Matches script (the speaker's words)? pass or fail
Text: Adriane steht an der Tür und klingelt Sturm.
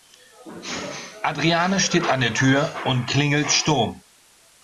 pass